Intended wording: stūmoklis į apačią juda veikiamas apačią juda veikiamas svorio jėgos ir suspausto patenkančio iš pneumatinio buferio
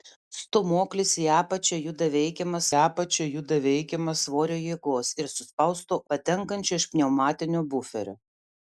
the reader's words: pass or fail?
pass